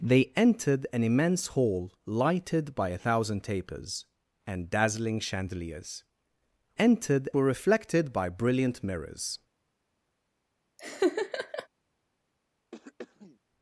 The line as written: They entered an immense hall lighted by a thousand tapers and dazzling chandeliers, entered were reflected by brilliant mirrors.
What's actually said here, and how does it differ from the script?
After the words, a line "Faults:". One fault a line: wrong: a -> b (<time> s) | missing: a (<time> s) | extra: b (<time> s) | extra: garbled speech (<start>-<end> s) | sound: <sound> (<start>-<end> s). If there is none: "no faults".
They entered an immense hall lighted by a thousand tapers and dazzling chandeliers, entered were reflected by brilliant mirrors.
Faults:
sound: laugh (10.8-11.7 s)
sound: throat clearing (12.7-13.4 s)